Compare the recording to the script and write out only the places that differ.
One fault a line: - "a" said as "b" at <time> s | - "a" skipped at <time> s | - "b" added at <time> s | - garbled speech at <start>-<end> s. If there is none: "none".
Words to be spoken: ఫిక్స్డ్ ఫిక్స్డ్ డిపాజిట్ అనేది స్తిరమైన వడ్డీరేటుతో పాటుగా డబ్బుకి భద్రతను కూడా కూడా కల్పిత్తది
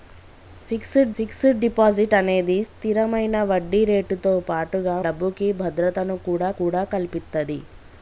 none